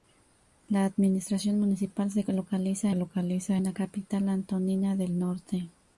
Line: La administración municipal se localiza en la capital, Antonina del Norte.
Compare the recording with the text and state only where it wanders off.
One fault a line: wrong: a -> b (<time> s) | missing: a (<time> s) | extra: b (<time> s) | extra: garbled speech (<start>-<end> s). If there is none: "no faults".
extra: localiza (3.0 s)